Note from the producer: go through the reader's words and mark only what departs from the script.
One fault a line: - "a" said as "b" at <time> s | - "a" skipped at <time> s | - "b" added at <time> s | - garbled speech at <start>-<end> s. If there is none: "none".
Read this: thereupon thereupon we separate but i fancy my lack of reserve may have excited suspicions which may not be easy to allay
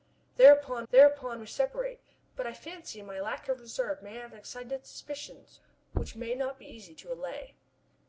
none